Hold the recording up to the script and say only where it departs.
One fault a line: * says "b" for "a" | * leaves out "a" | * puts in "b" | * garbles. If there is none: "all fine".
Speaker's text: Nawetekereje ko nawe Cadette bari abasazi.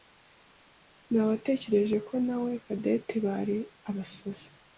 all fine